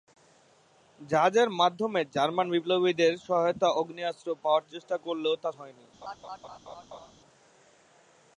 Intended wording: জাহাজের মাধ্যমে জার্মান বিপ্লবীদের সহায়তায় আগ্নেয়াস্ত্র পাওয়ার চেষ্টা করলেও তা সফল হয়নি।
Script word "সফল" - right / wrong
wrong